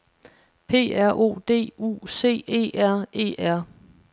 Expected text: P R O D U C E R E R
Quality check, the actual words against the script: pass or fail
pass